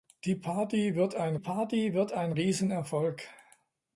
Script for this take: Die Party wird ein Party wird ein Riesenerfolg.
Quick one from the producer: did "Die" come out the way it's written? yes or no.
yes